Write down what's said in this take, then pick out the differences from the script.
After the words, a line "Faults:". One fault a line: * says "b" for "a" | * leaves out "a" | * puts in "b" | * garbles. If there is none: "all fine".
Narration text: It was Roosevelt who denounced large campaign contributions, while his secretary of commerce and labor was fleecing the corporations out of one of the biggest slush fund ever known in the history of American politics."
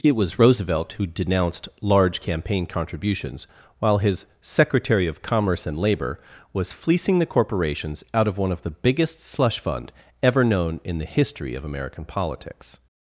It was Roosevelt who denounced large campaign contributions, while his secretary of commerce and labor was fleecing the corporations out of one of the biggest slush fund ever known in the history of American politics."
Faults:
all fine